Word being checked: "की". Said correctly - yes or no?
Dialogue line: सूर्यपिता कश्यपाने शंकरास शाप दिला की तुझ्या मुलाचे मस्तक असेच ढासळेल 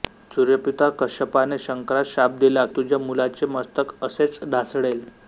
no